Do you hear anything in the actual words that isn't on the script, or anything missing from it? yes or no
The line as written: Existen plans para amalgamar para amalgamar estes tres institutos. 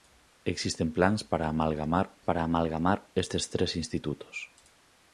no